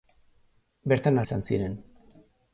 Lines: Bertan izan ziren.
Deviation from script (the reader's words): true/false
false